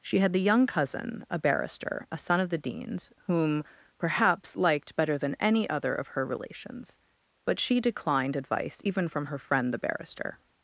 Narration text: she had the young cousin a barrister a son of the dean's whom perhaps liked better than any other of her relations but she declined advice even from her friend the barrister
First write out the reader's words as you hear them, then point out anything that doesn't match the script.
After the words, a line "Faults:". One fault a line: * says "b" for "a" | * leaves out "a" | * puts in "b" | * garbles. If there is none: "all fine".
she had the young cousin a barrister a son of the dean's whom perhaps liked better than any other of her relations but she declined advice even from her friend the barrister
Faults:
all fine